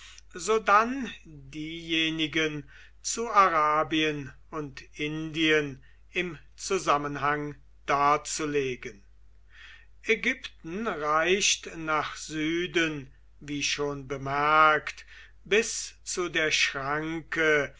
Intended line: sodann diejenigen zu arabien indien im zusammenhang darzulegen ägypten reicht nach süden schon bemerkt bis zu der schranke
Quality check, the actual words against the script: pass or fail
fail